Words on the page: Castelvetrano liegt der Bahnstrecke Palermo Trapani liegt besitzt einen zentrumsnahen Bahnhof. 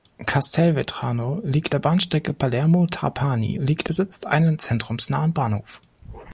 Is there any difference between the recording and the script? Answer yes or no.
no